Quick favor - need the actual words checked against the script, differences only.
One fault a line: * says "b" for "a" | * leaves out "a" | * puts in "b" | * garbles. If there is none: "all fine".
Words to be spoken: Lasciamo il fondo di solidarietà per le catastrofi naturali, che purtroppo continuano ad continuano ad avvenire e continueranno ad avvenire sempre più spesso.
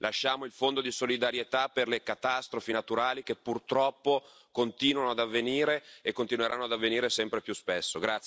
* leaves out "continuano ad"